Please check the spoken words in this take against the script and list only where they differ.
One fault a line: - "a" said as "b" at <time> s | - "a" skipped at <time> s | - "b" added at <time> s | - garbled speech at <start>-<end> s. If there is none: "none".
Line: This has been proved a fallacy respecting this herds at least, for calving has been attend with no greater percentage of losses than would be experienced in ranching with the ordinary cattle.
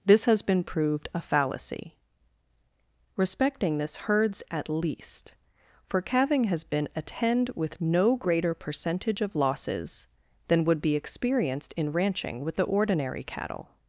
none